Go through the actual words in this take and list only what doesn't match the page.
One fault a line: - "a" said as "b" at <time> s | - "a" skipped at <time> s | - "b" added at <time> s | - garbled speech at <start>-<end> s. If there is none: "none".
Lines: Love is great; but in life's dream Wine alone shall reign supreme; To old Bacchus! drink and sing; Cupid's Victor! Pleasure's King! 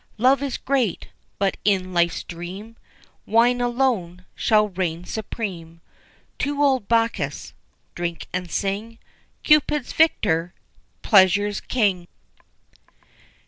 none